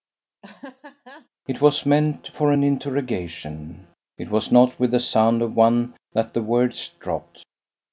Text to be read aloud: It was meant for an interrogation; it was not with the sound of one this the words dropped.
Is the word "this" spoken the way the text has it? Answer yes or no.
no